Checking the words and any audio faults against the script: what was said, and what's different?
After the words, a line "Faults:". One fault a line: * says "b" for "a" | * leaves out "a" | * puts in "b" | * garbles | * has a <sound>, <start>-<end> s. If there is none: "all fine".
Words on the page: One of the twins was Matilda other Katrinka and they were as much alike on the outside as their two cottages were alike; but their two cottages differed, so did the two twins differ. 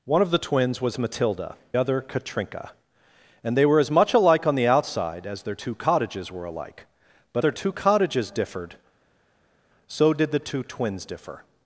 One of the twins was Matilda other Katrinka and they were as much alike on the outside as their two cottages were alike; but their two cottages differed, so did the two twins differ.
Faults:
all fine